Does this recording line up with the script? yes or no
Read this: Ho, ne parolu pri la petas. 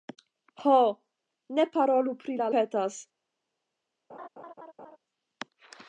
yes